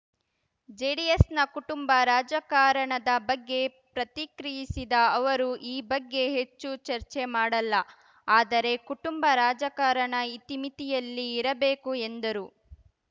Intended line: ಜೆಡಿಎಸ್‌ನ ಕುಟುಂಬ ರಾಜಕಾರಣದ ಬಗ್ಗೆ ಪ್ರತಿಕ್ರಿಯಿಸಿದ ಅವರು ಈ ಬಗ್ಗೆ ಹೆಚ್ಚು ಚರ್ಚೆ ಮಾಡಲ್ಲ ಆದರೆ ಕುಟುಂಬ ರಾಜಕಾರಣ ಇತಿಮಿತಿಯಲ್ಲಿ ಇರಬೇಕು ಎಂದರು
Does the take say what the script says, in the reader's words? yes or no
yes